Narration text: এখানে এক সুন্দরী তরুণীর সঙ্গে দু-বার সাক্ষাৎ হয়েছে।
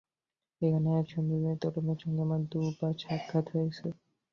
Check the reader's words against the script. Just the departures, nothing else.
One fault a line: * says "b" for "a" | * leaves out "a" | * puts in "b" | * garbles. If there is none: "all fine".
* puts in "আমার"